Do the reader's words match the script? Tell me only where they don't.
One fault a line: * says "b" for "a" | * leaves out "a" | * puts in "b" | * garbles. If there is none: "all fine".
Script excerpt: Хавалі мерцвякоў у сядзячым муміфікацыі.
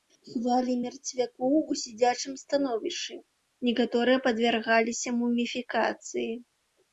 * puts in "становішчы некаторыя падвяргаліся"